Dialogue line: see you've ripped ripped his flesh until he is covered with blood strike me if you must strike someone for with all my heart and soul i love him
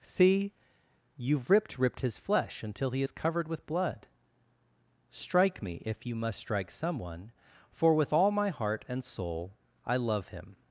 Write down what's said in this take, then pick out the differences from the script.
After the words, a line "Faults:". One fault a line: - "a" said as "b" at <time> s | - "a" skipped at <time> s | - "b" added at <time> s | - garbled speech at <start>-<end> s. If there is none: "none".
see you've ripped ripped his flesh until he is covered with blood strike me if you must strike someone for with all my heart and soul i love him
Faults:
none